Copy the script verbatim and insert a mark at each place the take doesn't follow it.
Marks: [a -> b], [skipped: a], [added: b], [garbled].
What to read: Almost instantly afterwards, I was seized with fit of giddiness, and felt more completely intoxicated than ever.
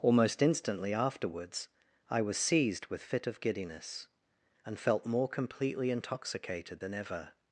Almost instantly afterwards, I was seized with fit of giddiness, and felt more completely intoxicated than ever.